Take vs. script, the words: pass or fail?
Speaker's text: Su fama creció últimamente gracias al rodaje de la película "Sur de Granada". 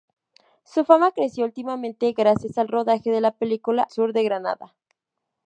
pass